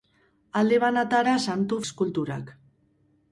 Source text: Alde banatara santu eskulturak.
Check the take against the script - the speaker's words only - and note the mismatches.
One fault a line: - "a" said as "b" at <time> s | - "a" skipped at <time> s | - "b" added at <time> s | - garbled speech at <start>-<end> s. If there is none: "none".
none